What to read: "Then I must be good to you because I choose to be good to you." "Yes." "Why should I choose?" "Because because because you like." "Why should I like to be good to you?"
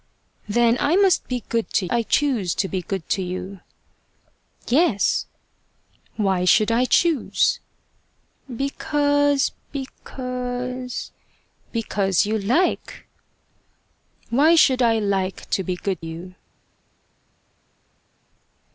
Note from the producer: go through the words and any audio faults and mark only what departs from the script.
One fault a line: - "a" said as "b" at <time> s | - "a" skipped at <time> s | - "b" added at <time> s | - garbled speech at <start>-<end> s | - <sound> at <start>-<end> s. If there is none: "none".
- "you because" skipped at 1.9 s
- "to" skipped at 16.0 s